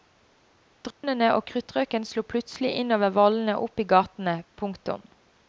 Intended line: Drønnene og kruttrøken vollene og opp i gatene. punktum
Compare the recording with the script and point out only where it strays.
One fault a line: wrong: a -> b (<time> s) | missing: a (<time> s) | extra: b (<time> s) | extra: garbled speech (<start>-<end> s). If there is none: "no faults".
extra: slo plutselig innover (2.1 s)